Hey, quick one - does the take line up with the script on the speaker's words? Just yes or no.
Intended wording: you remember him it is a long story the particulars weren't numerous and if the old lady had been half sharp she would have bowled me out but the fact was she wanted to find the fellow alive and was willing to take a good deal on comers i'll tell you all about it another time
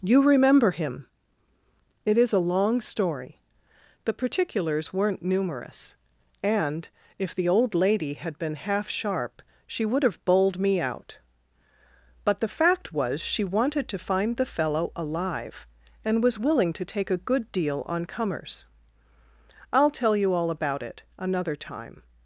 yes